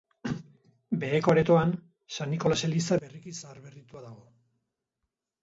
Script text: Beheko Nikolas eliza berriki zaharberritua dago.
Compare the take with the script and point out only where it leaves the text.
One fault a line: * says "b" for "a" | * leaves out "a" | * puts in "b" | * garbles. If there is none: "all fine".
* puts in "aretoan San"